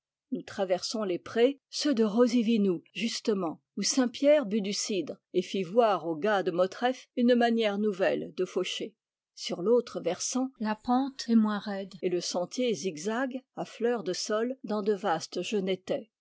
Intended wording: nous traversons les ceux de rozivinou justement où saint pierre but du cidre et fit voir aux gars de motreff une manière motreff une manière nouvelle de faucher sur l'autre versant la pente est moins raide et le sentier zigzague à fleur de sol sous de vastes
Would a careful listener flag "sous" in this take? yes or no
yes